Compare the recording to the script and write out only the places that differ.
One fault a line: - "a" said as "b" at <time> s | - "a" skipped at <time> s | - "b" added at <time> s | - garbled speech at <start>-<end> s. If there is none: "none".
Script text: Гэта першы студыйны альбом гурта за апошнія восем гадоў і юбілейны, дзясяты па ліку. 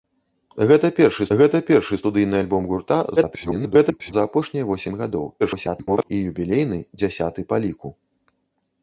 - "гэта першы" added at 1.4 s
- garbled speech at 3.2-4.1 s
- garbled speech at 5.4-6.1 s